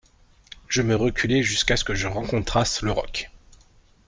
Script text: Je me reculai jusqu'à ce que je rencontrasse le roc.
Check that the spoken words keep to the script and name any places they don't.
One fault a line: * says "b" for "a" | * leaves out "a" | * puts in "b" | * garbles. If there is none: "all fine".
all fine